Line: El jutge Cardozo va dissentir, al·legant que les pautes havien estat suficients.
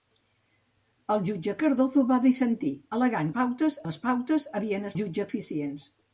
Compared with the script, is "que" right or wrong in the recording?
wrong